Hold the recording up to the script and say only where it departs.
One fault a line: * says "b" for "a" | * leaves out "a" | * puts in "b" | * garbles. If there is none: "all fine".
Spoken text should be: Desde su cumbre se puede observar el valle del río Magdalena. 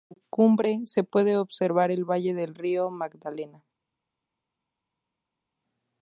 all fine